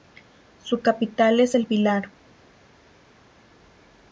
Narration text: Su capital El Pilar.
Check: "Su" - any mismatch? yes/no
no